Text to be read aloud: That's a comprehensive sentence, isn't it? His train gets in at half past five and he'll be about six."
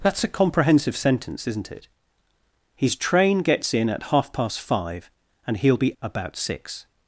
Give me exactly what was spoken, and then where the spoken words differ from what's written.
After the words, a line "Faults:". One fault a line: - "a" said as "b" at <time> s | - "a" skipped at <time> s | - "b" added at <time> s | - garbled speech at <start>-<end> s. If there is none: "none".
That's a comprehensive sentence, isn't it? His train gets in at half past five and he'll be about six."
Faults:
none